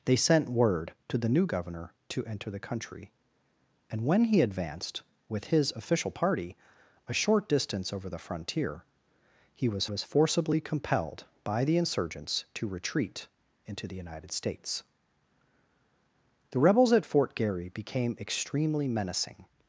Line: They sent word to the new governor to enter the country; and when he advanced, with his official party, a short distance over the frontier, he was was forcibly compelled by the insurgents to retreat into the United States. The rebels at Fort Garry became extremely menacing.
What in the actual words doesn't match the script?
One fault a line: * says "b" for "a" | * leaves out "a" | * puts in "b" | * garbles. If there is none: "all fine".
all fine